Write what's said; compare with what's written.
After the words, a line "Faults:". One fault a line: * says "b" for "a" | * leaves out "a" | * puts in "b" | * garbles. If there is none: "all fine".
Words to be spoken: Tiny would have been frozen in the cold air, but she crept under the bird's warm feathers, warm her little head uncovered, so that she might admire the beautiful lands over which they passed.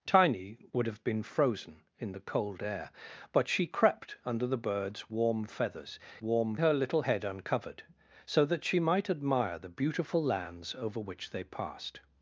Tiny would have been frozen in the cold air, but she crept under the bird's warm feathers, warm her little head uncovered, so that she might admire the beautiful lands over which they passed.
Faults:
all fine